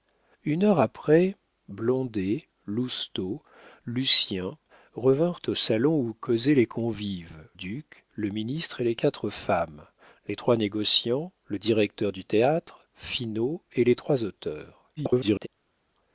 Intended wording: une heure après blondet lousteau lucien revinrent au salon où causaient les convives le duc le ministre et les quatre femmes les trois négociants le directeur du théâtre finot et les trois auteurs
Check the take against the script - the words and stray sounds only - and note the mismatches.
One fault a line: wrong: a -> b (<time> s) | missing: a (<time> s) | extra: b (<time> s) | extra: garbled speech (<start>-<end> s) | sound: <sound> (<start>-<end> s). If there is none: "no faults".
missing: le (7.5 s)
extra: garbled speech (15.0-15.5 s)